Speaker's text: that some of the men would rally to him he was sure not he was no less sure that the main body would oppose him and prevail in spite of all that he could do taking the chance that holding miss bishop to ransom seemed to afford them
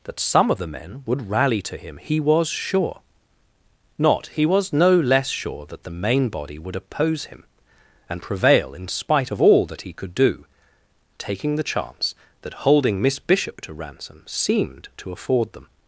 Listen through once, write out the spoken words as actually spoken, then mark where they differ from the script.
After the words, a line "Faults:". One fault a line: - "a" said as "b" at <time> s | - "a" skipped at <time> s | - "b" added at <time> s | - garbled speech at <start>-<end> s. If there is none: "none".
that some of the men would rally to him he was sure not he was no less sure that the main body would oppose him and prevail in spite of all that he could do taking the chance that holding miss bishop to ransom seemed to afford them
Faults:
none